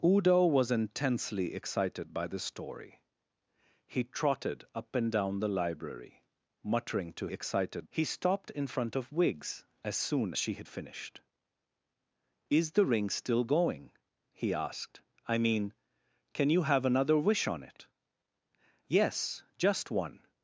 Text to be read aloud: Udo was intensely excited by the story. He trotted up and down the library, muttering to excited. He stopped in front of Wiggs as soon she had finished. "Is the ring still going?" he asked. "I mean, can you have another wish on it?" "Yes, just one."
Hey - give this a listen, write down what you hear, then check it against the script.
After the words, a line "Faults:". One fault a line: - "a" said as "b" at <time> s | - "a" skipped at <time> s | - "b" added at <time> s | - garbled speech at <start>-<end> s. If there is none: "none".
Udo was intensely excited by the story. He trotted up and down the library, muttering to excited. He stopped in front of Wiggs as soon she had finished. "Is the ring still going?" he asked. "I mean, can you have another wish on it?" "Yes, just one."
Faults:
none